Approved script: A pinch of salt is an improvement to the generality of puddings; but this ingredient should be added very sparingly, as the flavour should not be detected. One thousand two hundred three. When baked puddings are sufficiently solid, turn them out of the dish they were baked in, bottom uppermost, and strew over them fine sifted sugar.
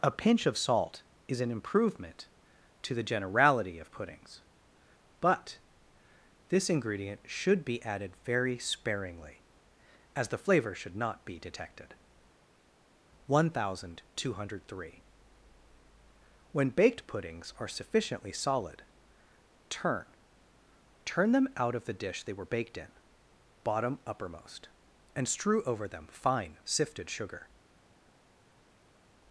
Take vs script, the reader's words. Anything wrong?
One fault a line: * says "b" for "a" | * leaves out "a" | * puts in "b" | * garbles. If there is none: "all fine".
* puts in "turn"